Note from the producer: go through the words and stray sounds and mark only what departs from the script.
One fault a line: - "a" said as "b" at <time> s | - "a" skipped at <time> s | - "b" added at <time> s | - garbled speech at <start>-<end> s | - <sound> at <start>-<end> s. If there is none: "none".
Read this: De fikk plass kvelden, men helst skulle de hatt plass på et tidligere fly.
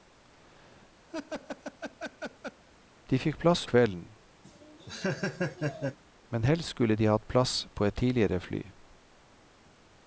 - laugh at 1.1-2.6 s
- laugh at 4.4-6.0 s